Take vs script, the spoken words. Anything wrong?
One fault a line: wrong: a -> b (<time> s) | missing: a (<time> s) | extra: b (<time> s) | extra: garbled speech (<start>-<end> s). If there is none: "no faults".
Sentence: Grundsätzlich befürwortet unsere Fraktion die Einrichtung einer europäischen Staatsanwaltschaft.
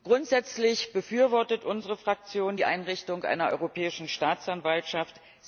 no faults